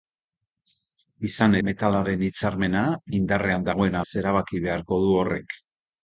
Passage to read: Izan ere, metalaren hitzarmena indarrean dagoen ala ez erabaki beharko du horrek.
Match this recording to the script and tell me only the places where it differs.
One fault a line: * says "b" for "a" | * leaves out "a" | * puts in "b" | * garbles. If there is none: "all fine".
* leaves out "ere"
* leaves out "ala"